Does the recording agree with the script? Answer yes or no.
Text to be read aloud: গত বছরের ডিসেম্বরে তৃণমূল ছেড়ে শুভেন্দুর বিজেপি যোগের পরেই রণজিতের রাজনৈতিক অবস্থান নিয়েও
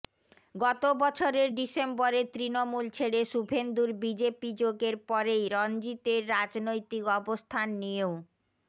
yes